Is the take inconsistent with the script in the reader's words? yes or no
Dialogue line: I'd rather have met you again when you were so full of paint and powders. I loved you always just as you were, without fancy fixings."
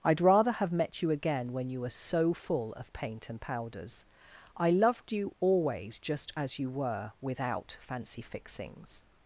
no